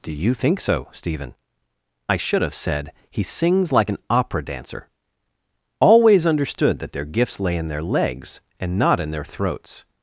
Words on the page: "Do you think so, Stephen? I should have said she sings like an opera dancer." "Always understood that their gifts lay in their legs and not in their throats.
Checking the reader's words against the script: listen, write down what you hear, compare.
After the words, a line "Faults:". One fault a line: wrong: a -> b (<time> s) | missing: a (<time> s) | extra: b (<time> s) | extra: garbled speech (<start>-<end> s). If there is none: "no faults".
"Do you think so, Stephen? I should have said he sings like an opera dancer." "Always understood that their gifts lay in their legs and not in their throats.
Faults:
wrong: she -> he (3.1 s)